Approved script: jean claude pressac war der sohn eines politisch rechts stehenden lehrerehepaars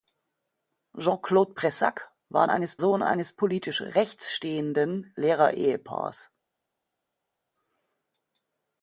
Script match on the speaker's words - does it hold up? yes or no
no